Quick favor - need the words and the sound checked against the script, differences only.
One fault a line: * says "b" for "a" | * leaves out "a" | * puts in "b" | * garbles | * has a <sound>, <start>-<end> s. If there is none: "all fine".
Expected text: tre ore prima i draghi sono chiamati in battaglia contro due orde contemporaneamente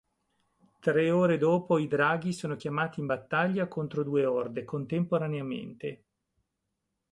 * says "dopo" for "prima"